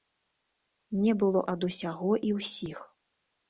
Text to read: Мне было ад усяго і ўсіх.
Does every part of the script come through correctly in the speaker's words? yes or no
yes